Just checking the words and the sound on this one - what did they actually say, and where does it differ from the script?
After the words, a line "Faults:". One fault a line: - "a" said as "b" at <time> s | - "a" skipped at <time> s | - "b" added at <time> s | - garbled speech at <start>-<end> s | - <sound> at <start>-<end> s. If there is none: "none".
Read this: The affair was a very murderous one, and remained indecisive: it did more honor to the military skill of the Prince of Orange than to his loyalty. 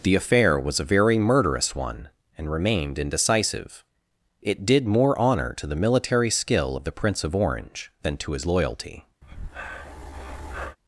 The affair was a very murderous one, and remained indecisive: it did more honor to the military skill of the Prince of Orange than to his loyalty.
Faults:
- breath at 9.2-10.8 s